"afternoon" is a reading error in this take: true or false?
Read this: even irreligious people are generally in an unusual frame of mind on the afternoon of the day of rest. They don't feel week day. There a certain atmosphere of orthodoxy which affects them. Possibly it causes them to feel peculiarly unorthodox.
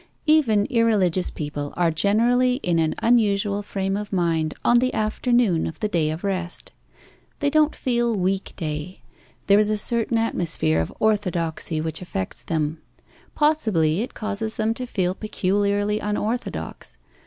false